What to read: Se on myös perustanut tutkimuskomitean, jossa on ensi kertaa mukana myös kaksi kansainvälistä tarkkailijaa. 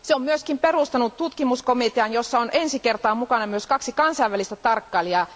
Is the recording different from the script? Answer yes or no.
no